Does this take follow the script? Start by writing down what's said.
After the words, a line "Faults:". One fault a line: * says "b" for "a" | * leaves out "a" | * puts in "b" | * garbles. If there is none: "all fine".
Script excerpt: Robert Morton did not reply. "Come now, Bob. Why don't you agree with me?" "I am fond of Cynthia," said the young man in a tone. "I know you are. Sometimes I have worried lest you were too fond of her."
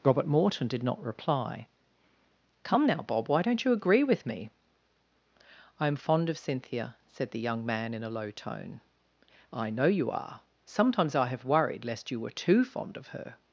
Robert Morton did not reply. "Come now, Bob. Why don't you agree with me?" "I am fond of Cynthia," said the young man in a low tone. "I know you are. Sometimes I have worried lest you were too fond of her."
Faults:
* puts in "low"